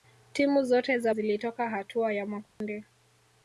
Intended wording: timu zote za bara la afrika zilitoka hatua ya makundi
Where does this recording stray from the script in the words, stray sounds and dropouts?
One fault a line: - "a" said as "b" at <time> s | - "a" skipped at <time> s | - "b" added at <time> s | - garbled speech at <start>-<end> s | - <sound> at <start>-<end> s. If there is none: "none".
- "bara la afrika" skipped at 1.1 s
- dropout at 2.5-2.6 s